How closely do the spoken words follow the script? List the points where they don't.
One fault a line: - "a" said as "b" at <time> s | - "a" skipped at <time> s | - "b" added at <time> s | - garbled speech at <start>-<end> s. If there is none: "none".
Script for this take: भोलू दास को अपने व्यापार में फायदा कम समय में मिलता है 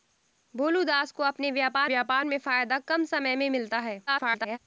- "व्यापार" added at 1.8 s
- garbled speech at 4.1-4.6 s